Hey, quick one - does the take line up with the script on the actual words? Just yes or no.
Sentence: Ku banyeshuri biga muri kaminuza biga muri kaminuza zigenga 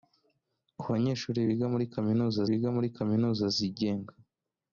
yes